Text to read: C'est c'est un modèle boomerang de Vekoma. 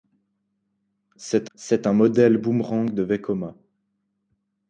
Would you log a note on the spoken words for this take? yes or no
no